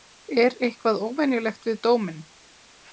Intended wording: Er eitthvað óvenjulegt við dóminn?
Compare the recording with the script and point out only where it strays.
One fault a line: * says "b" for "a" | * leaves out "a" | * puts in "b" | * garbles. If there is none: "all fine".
all fine